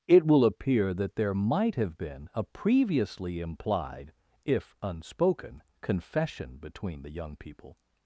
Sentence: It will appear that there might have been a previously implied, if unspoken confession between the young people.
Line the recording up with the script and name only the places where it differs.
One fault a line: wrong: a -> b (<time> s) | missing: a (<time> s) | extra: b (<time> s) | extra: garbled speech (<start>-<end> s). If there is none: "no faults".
no faults